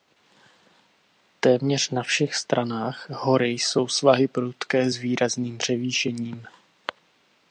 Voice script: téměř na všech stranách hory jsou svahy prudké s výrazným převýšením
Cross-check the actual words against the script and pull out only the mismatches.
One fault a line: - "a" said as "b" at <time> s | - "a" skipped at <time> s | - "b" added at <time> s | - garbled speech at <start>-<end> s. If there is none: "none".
none